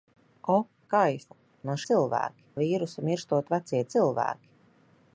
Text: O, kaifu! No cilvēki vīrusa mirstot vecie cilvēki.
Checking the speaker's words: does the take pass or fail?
pass